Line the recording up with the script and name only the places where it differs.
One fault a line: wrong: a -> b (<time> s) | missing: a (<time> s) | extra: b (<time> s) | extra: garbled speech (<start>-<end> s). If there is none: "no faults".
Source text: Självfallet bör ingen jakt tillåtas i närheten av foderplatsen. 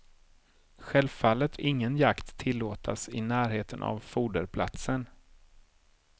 missing: bör (1.6 s)